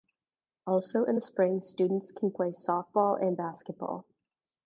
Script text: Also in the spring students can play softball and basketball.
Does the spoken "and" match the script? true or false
true